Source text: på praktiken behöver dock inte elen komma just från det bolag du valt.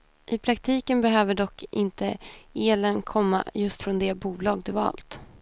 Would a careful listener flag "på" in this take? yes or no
yes